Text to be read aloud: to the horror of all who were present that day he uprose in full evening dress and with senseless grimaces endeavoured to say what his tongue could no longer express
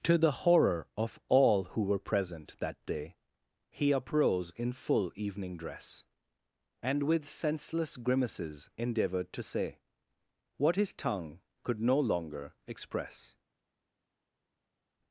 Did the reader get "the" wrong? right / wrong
right